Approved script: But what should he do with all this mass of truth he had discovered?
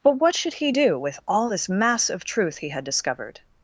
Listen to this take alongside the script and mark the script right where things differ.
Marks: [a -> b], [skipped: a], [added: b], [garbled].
But what should he do with all this mass of truth he had discovered?